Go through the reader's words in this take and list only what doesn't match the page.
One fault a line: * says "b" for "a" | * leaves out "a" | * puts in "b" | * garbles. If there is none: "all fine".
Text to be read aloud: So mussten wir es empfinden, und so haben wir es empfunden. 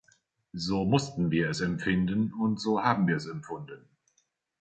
all fine